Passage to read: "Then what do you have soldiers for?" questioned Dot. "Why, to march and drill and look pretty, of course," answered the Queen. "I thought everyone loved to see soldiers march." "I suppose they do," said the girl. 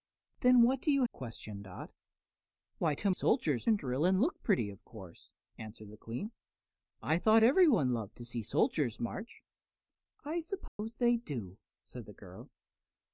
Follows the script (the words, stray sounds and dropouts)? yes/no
no